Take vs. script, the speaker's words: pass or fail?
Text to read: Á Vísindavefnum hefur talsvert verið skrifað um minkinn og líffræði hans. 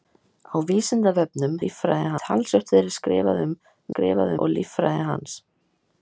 fail